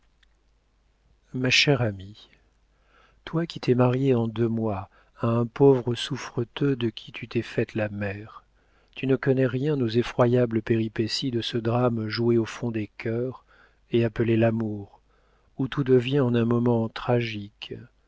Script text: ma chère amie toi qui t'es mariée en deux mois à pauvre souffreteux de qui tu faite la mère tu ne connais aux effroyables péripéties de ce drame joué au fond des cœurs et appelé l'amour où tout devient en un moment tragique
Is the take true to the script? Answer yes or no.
no